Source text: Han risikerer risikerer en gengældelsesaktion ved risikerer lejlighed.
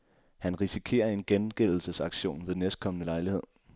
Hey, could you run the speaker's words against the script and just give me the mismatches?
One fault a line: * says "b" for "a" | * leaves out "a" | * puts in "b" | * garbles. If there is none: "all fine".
* leaves out "risikerer"
* says "næstkommende" for "risikerer"